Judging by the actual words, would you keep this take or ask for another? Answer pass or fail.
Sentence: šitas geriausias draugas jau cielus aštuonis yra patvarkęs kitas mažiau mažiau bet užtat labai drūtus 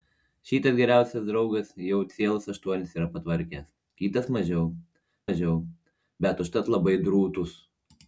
pass